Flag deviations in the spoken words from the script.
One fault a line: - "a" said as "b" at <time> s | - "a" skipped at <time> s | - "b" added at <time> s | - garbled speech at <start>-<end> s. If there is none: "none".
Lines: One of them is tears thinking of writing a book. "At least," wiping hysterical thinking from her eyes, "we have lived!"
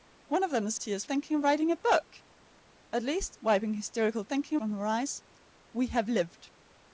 none